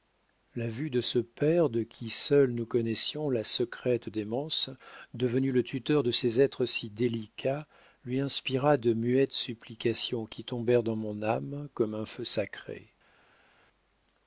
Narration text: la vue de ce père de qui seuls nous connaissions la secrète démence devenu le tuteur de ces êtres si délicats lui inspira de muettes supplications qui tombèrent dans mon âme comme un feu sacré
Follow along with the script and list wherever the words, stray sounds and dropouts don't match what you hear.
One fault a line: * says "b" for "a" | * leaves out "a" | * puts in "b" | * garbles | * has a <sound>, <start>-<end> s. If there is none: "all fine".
all fine